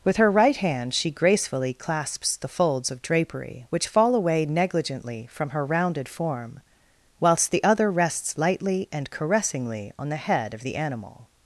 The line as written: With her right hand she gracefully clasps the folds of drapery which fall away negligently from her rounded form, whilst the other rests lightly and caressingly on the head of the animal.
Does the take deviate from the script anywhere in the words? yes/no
no